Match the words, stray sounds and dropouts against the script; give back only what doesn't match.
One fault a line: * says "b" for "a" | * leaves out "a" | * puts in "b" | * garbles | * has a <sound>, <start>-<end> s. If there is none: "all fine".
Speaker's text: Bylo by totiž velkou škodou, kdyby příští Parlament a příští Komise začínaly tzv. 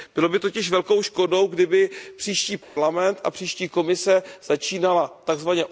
* has a dropout, 2.6-2.8 s